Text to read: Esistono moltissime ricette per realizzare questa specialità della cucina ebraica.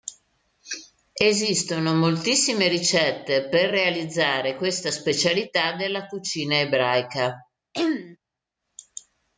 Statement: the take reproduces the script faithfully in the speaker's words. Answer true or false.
true